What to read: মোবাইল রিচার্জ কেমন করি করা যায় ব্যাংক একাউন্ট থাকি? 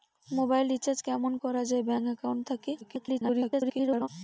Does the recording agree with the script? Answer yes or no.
no